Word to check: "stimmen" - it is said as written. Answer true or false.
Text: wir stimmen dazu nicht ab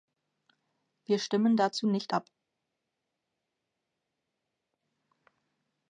true